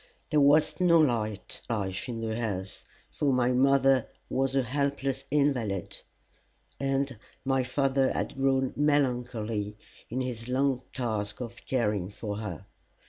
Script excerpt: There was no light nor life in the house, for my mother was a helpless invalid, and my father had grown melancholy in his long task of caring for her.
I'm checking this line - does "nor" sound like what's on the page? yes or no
no